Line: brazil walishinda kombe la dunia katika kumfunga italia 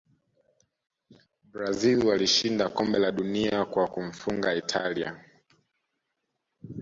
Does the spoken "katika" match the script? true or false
false